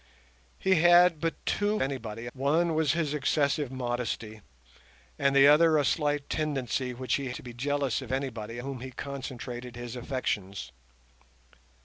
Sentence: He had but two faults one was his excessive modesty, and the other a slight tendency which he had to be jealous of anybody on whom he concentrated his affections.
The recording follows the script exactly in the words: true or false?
false